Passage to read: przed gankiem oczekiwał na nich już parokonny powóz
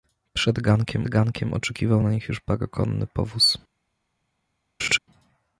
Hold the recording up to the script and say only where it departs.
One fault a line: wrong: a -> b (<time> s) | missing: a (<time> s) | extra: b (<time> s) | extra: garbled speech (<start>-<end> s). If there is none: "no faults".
extra: gankiem (1.1 s)